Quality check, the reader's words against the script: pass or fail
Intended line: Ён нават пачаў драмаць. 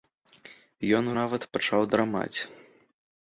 pass